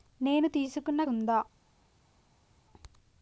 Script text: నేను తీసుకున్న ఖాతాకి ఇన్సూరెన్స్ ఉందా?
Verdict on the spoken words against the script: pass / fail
fail